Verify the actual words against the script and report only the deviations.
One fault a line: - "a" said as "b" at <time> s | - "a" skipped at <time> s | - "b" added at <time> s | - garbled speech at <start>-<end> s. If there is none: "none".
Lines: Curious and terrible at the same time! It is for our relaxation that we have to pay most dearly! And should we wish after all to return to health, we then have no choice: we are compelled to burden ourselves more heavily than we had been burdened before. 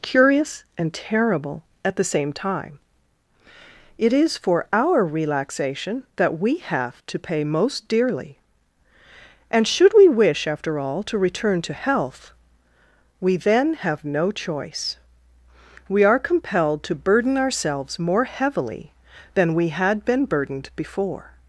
none